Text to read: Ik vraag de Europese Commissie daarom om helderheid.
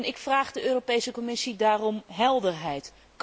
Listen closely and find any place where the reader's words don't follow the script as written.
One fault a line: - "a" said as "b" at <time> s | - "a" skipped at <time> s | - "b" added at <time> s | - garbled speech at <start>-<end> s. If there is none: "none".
- "om" skipped at 2.0 s